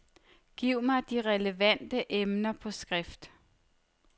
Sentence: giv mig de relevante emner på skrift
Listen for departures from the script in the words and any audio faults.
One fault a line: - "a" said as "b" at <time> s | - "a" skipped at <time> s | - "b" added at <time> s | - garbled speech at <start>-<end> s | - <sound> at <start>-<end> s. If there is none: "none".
none